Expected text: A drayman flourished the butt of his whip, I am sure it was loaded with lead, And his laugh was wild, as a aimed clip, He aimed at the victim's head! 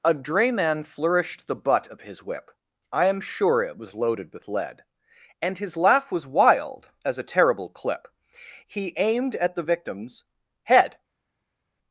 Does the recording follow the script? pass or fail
fail